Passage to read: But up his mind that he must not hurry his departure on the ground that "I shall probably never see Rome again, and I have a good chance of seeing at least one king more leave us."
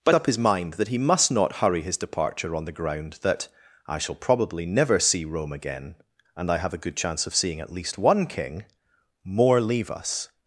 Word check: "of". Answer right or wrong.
right